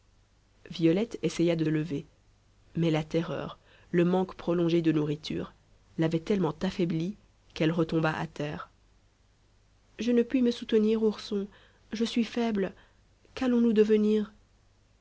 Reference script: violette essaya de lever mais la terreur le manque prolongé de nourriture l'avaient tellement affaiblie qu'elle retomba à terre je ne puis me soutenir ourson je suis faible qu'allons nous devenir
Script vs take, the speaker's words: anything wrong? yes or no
no